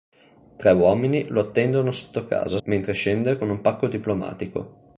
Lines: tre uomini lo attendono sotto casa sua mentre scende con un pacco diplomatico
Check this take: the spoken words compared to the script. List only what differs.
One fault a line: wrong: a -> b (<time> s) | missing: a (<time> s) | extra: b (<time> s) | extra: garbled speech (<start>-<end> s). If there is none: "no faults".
missing: sua (2.6 s)